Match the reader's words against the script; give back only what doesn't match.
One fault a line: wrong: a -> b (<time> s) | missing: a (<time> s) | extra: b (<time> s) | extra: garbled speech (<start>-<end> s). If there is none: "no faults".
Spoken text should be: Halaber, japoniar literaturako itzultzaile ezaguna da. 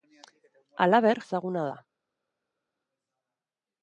missing: japoniar literaturako itzultzaile (1.2 s)